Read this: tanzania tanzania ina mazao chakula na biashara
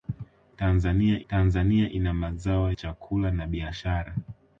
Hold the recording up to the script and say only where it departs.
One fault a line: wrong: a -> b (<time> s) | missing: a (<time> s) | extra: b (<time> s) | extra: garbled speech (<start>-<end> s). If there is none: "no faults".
no faults